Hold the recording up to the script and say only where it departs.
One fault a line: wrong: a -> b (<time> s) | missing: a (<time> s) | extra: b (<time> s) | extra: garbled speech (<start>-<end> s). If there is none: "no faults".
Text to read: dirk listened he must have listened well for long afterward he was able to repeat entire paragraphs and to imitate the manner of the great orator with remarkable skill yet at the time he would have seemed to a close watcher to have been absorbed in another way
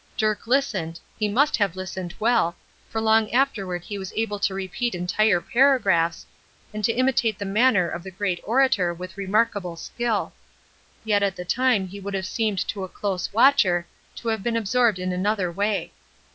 no faults